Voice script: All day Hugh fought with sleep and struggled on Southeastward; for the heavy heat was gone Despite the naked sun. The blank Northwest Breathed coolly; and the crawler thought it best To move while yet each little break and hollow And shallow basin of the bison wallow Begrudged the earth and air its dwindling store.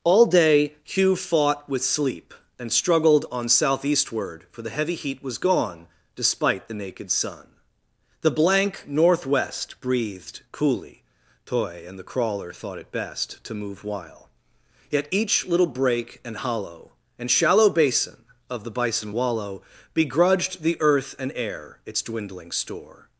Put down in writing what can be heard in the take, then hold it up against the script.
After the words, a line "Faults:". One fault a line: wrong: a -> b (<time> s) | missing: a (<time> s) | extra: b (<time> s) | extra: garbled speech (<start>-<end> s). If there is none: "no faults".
All day Hugh fought with sleep and struggled on Southeastward; for the heavy heat was gone Despite the naked sun. The blank Northwest Breathed coolly; toy and the crawler thought it best To move while yet each little break and hollow And shallow basin of the bison wallow Begrudged the earth and air its dwindling store.
Faults:
extra: toy (11.4 s)